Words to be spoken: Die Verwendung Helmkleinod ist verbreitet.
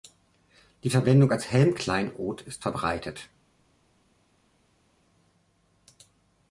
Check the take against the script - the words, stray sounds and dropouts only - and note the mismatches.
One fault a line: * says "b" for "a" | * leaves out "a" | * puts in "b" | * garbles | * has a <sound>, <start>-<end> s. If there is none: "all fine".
* puts in "als"